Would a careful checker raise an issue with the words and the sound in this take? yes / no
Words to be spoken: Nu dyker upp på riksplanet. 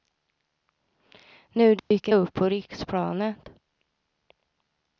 yes